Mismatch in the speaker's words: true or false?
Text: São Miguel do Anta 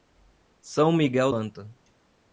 true